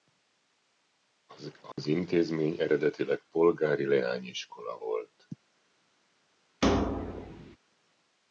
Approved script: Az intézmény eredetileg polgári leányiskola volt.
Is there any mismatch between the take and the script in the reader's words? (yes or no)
no